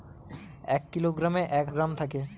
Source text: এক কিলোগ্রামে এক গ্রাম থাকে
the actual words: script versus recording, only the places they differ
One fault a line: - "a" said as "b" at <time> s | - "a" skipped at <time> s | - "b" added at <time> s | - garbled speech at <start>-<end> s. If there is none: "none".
none